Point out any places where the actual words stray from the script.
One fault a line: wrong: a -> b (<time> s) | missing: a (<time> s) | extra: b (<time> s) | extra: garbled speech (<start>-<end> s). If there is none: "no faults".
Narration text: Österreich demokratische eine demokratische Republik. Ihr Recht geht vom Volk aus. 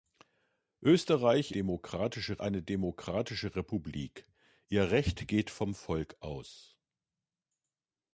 no faults